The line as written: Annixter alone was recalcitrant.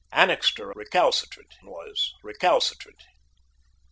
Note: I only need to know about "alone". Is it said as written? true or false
false